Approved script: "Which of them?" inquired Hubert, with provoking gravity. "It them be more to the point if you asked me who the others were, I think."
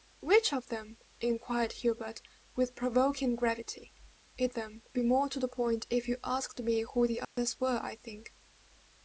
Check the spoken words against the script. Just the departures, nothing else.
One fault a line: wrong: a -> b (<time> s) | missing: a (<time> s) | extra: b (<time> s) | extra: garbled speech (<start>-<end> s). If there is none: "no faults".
no faults